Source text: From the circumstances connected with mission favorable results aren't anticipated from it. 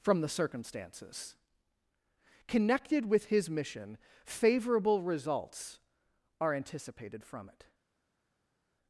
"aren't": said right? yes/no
no